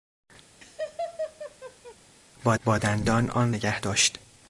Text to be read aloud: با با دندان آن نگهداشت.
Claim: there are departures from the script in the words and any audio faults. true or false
true